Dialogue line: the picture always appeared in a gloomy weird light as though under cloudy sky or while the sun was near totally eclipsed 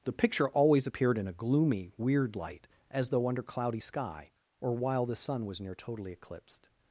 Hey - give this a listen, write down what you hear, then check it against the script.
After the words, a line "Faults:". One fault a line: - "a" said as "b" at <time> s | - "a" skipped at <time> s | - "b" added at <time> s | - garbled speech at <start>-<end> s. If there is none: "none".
the picture always appeared in a gloomy weird light as though under cloudy sky or while the sun was near totally eclipsed
Faults:
none